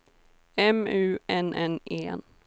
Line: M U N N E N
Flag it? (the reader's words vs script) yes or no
no